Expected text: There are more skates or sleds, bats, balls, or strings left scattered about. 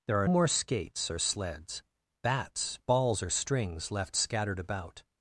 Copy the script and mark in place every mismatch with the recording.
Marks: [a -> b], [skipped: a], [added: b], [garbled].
There are more skates or sleds, bats, balls, or strings left scattered about.